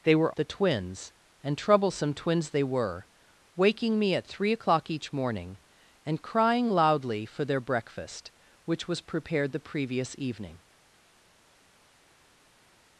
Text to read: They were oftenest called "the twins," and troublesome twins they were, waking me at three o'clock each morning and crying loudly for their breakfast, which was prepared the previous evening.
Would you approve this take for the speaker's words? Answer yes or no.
no